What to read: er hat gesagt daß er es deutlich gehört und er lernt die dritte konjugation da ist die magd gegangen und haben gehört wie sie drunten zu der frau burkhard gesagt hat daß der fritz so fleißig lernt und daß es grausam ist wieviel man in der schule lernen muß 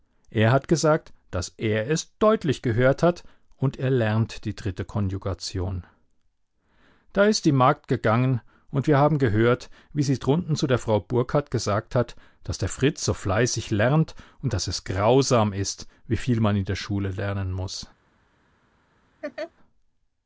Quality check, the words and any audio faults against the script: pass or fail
fail